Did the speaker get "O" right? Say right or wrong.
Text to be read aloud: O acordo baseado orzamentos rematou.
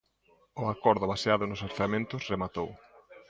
right